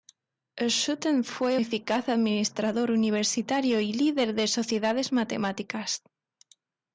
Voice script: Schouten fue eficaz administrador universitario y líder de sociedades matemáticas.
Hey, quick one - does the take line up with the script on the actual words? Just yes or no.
yes